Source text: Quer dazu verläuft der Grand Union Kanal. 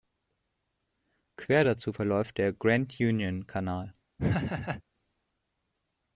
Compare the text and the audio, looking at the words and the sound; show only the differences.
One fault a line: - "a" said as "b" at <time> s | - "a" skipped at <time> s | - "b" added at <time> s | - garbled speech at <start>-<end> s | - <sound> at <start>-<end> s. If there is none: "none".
- laugh at 4.2-4.8 s